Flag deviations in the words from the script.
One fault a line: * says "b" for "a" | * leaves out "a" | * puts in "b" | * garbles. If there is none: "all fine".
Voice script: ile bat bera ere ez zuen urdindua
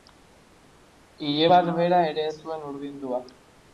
all fine